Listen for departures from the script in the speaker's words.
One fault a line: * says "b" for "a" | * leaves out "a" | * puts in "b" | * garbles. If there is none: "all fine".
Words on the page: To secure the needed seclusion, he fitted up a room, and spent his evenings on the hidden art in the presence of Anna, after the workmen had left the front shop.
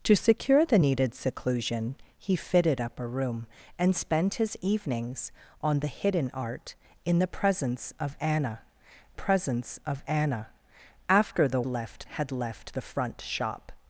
* puts in "presence of Anna"
* says "left" for "workmen"